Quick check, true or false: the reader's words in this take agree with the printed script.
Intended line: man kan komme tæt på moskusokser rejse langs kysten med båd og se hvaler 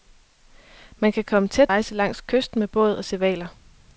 false